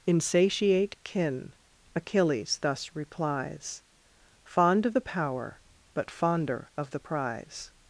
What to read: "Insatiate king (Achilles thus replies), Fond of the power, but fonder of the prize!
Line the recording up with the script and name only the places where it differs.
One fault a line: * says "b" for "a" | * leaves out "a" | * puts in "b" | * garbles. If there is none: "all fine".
* says "kin" for "king"